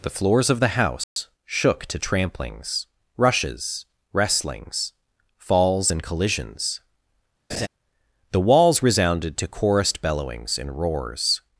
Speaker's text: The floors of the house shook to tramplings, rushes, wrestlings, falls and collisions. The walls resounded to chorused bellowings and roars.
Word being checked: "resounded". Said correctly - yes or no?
yes